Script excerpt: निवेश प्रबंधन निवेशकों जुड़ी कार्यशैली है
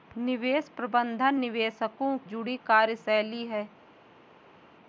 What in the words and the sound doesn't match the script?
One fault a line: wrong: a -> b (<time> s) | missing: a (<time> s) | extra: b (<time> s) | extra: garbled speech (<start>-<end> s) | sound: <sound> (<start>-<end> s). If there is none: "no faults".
no faults